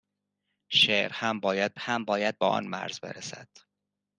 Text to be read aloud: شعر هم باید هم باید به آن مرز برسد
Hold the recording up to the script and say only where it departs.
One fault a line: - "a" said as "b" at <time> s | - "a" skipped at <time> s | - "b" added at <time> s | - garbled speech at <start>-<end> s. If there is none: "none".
none